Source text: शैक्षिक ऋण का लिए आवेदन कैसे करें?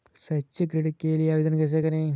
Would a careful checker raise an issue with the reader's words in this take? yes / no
yes